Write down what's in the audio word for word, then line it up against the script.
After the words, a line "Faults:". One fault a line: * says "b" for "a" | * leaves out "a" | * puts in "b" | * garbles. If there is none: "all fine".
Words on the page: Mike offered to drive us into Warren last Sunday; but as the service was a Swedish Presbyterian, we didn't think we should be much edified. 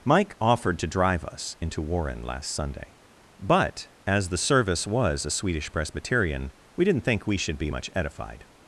Mike offered to drive us into Warren last Sunday; but as the service was a Swedish Presbyterian, we didn't think we should be much edified.
Faults:
all fine